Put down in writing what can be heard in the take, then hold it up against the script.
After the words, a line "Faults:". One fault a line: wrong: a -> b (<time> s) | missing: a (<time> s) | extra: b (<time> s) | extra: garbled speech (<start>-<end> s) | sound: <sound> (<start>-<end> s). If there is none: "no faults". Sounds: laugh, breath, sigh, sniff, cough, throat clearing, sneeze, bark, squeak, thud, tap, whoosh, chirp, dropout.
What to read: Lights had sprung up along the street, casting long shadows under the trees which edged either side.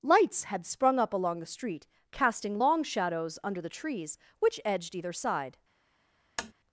Lights had sprung up along the street, casting long shadows under the trees which edged either side.
Faults:
sound: tap (6.4-6.5 s)